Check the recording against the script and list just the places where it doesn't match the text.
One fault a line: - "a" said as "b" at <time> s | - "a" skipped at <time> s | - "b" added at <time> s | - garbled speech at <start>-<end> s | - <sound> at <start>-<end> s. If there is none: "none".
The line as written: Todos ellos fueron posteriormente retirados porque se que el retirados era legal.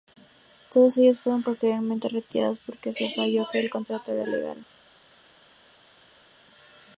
- "falló" added at 3.1 s
- "retirados" said as "contrato" at 3.7 s